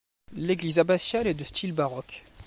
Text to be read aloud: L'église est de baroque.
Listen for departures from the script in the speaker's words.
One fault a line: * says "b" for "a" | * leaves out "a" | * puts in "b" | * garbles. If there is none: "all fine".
* puts in "abbatiale"
* puts in "style"